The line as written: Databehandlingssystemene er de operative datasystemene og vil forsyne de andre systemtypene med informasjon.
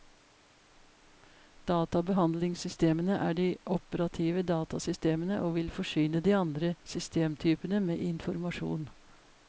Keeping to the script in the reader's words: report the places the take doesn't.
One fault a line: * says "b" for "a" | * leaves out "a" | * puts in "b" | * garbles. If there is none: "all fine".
all fine